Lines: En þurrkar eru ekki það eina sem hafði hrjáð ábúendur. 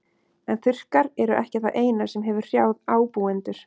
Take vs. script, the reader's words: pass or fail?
fail